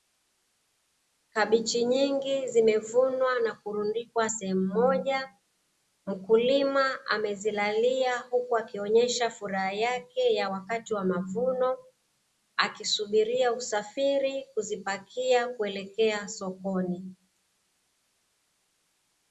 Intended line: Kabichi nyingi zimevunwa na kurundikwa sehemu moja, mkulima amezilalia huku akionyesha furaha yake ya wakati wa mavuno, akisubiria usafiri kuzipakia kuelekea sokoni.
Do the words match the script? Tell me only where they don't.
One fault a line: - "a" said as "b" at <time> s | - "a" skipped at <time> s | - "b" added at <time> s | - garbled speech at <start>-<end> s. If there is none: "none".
none